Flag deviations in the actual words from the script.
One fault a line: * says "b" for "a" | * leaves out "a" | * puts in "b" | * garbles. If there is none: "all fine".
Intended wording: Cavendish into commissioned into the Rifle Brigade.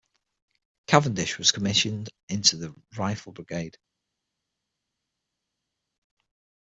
* says "was" for "into"